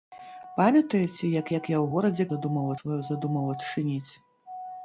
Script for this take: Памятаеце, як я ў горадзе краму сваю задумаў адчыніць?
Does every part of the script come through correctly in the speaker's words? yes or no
no